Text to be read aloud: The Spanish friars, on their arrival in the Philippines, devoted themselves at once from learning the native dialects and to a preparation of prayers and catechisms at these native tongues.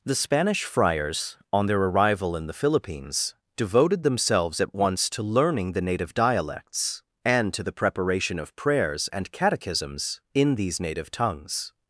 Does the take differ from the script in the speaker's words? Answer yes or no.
yes